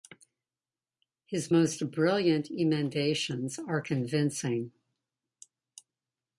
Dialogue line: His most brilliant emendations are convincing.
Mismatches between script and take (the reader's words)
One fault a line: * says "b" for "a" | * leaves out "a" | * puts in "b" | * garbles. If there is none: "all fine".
all fine